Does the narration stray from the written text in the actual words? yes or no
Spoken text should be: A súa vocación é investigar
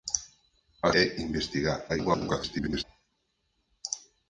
yes